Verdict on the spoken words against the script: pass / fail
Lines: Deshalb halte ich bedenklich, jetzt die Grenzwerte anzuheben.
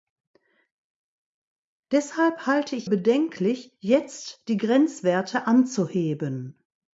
pass